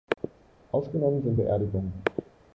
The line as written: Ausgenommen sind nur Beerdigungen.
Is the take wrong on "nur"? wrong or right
wrong